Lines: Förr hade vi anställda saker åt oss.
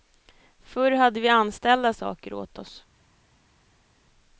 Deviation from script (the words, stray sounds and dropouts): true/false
false